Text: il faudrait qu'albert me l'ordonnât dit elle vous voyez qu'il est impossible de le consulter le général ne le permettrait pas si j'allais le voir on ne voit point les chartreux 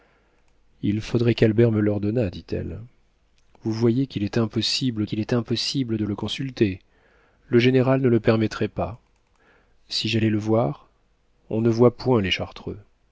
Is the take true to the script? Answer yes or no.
no